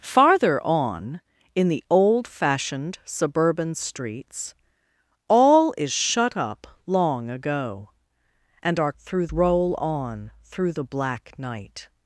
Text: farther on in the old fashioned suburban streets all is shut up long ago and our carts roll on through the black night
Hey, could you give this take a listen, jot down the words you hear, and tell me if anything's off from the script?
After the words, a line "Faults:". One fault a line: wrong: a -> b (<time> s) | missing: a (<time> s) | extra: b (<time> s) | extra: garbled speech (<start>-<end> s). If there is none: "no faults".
farther on in the old fashioned suburban streets all is shut up long ago and our through roll on through the black night
Faults:
wrong: carts -> through (9.0 s)